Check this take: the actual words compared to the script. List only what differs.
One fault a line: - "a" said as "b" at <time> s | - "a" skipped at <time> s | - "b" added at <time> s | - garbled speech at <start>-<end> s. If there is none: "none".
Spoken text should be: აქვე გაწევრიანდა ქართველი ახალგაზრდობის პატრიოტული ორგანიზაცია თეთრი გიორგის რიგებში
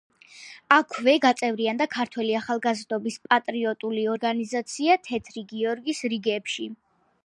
none